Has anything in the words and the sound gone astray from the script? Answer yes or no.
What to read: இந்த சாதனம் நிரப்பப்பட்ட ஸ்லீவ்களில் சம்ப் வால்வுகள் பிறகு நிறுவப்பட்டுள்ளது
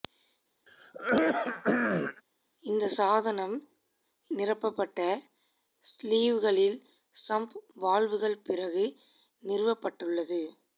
yes